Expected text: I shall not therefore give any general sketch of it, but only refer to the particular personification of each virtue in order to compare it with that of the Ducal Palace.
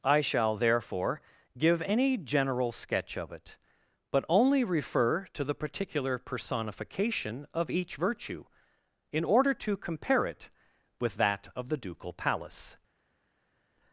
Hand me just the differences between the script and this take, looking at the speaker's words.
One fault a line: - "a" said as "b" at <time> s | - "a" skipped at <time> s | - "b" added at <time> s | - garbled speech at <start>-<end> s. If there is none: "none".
- "not" skipped at 0.6 s